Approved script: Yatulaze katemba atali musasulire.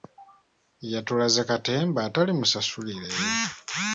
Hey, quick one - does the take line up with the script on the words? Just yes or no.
yes